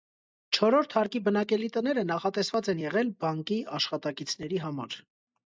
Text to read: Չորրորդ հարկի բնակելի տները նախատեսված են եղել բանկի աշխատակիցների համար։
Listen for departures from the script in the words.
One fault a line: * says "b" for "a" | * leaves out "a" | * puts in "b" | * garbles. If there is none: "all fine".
all fine